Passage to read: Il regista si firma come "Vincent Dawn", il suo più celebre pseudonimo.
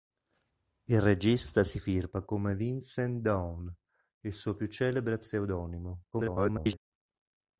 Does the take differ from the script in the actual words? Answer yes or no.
yes